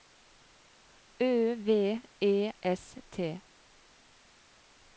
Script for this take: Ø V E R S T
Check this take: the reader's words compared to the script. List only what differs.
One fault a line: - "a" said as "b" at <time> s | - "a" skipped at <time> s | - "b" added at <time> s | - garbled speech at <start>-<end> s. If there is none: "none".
- "R" skipped at 2.5 s